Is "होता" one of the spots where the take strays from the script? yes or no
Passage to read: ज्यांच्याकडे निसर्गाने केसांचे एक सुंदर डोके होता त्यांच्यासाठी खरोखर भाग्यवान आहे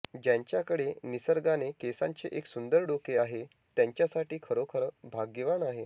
yes